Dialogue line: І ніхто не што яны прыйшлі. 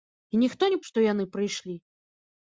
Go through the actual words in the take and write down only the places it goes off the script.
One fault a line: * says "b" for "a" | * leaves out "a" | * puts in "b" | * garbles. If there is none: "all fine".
all fine